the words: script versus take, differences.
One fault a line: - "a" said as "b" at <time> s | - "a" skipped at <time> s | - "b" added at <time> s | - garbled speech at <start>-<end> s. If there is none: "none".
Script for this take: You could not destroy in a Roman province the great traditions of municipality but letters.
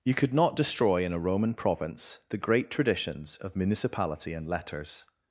- "but" said as "and" at 4.3 s